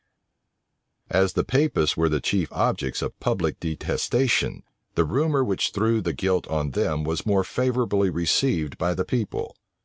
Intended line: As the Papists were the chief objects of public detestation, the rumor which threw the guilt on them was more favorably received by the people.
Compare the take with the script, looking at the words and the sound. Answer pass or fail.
pass